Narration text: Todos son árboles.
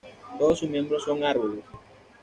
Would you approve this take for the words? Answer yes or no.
no